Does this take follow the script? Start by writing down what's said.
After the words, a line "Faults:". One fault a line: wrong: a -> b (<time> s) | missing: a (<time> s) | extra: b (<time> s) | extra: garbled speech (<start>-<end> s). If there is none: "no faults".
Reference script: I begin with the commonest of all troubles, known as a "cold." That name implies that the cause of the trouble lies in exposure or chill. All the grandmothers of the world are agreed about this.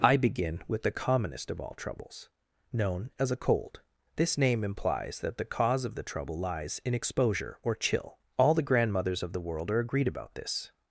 I begin with the commonest of all troubles, known as a "cold." This name implies that the cause of the trouble lies in exposure or chill. All the grandmothers of the world are agreed about this.
Faults:
wrong: That -> This (4.2 s)